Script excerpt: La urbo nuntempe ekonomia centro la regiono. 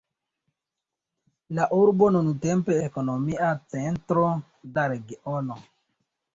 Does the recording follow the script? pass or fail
pass